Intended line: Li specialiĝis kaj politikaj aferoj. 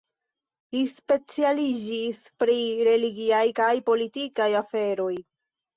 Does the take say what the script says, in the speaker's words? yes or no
no